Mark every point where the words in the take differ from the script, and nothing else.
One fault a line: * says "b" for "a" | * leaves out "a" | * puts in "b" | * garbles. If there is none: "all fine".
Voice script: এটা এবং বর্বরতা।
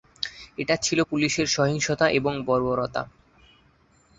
* puts in "ছিল পুলিশের সহিংসতা"